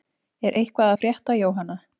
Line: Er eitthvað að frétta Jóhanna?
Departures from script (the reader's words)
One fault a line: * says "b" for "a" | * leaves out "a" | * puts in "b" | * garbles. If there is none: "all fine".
all fine